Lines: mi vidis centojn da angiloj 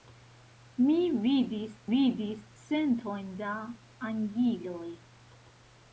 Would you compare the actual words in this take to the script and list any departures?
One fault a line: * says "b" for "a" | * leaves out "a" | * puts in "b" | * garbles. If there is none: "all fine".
* puts in "vidis"